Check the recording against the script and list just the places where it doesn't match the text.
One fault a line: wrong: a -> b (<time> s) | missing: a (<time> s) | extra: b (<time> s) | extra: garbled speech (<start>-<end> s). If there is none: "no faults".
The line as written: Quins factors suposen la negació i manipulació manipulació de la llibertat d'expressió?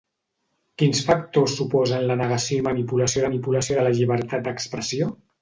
no faults